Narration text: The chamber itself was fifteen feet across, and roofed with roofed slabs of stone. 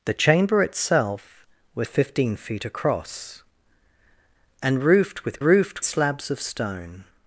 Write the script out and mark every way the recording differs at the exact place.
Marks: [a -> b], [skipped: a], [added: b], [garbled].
The chamber itself was fifteen feet across, and roofed with roofed slabs of stone.